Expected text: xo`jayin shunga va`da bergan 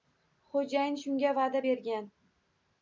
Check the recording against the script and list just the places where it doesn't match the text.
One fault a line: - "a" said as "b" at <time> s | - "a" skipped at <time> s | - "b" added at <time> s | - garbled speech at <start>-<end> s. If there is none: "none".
none